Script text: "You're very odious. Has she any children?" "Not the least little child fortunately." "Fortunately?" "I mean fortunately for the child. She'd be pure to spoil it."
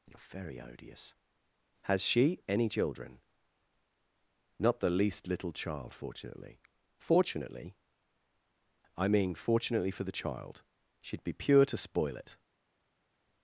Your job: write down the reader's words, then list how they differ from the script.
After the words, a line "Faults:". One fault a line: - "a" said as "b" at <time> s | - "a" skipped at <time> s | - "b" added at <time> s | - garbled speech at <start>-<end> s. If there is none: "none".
"You're very odious. Has she any children?" "Not the least little child fortunately." "Fortunately?" "I mean fortunately for the child. She'd be pure to spoil it."
Faults:
none